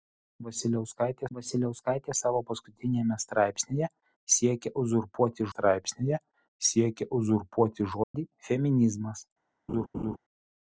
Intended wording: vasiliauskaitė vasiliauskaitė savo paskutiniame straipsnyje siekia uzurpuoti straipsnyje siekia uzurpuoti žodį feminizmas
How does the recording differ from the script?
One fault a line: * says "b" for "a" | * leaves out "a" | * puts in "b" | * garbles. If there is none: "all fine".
all fine